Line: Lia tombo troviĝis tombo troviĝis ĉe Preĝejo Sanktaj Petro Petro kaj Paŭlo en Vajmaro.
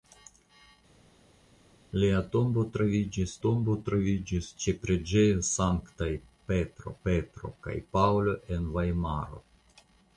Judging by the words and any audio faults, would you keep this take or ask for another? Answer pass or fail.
pass